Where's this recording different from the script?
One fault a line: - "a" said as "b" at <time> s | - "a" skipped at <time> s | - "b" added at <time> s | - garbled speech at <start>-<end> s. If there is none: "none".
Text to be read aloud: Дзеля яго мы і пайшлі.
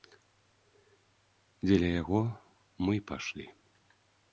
none